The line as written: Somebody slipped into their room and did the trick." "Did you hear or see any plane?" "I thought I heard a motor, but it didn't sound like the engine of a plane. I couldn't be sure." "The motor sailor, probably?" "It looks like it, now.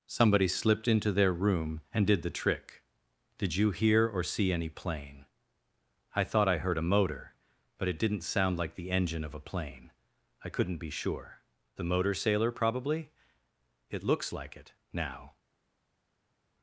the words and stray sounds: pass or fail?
pass